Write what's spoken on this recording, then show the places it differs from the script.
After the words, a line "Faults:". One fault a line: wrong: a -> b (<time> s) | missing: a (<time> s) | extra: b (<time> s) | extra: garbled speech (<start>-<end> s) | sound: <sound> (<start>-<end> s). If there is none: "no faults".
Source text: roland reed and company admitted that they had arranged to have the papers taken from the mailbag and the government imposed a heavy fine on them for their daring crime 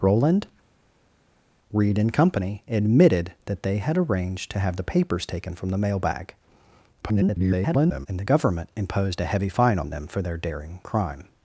roland reed and company admitted that they had arranged to have the papers taken from the mailbag [garbled] and the government imposed a heavy fine on them for their daring crime
Faults:
extra: garbled speech (7.0-8.1 s)